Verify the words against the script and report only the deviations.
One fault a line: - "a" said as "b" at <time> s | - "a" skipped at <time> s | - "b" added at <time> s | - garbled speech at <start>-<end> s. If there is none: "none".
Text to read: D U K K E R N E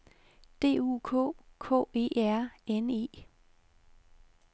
none